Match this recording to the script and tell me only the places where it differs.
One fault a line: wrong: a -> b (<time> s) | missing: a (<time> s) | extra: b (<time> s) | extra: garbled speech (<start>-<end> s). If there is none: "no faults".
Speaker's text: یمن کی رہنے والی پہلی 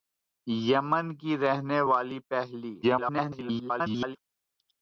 extra: garbled speech (2.8-4.2 s)